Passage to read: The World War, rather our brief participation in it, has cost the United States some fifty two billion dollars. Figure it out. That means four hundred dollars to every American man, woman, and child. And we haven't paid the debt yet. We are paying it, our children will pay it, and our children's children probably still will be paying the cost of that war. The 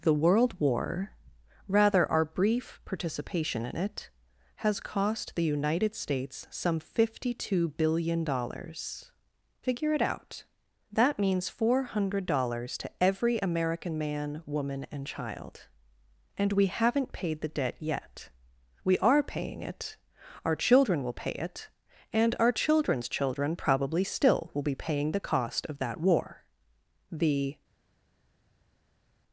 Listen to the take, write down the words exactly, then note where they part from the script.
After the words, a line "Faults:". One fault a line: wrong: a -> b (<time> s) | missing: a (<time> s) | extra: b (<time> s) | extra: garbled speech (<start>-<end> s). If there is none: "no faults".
The World War, rather our brief participation in it, has cost the United States some fifty two billion dollars. Figure it out. That means four hundred dollars to every American man, woman, and child. And we haven't paid the debt yet. We are paying it, our children will pay it, and our children's children probably still will be paying the cost of that war. The
Faults:
no faults